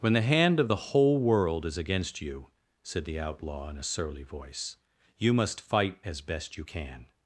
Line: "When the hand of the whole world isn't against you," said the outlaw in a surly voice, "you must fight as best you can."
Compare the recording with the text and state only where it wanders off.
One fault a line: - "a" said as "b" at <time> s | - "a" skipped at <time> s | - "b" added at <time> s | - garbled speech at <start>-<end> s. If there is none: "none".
- "isn't" said as "is" at 1.7 s